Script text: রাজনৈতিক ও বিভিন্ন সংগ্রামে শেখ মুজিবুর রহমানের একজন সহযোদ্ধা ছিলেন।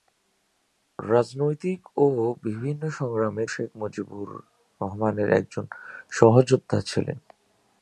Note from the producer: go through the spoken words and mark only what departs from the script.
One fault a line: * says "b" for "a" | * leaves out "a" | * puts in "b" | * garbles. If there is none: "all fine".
all fine